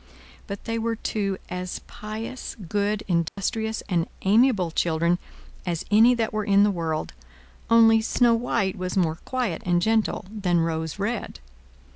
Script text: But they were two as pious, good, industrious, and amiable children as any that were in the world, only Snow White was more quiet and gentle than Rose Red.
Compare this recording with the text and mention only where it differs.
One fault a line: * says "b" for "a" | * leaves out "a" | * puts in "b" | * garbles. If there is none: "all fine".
all fine